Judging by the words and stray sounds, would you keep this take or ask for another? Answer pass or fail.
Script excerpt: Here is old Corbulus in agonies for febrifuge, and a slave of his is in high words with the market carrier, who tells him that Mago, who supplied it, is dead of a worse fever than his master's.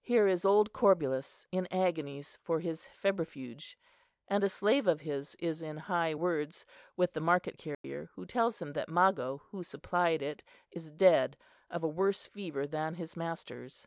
fail